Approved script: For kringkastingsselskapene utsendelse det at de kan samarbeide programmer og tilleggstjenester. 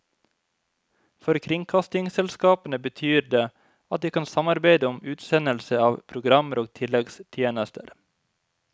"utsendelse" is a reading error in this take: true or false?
true